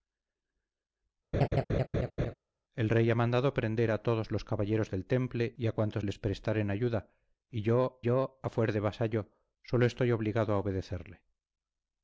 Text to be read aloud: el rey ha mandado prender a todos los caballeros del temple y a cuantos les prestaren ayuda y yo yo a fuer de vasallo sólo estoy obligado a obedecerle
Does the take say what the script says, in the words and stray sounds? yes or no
no